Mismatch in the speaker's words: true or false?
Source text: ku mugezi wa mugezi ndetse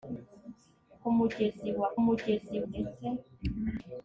false